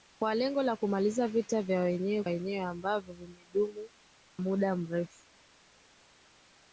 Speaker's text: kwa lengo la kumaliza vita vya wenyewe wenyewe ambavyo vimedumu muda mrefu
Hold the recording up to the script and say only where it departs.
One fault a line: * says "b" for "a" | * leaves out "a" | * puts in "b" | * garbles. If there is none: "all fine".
all fine